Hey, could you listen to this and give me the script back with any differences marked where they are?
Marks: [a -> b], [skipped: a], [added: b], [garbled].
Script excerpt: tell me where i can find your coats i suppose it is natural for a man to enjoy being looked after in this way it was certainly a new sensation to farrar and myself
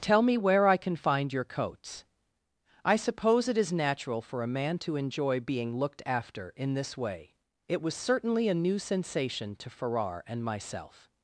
tell me where i can find your coats i suppose it is natural for a man to enjoy being looked after in this way it was certainly a new sensation to farrar and myself